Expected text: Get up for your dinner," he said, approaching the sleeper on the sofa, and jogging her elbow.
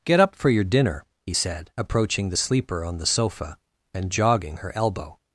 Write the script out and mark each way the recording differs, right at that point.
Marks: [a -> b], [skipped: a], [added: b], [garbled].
Get up for your dinner," he said, approaching the sleeper on the sofa, and jogging her elbow.